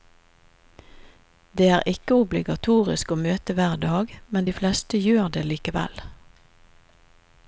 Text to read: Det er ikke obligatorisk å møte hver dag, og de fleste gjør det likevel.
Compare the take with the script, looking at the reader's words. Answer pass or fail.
fail